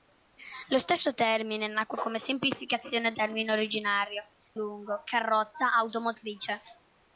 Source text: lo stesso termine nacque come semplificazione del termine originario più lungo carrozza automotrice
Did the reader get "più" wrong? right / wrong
wrong